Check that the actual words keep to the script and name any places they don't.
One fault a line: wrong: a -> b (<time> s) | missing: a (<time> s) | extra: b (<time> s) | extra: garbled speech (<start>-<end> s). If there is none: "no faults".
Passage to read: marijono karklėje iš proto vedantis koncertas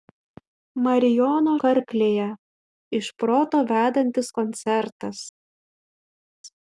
no faults